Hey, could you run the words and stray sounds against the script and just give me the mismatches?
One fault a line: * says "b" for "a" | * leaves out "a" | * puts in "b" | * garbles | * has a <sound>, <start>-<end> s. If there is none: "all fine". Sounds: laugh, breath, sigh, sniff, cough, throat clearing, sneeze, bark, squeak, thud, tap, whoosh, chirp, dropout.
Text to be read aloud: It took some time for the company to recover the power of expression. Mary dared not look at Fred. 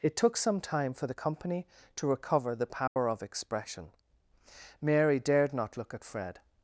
* has a dropout, 2.9-3.0 s